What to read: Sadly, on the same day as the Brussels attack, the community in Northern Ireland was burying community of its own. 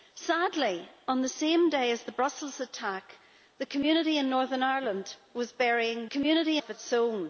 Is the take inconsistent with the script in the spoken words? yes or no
no